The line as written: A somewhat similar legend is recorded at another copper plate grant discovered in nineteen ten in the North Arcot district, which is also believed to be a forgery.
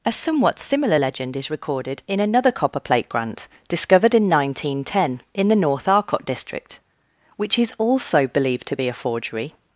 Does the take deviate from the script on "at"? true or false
true